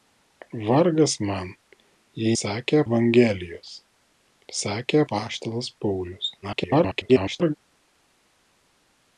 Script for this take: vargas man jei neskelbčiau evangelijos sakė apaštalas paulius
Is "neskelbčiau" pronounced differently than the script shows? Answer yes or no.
yes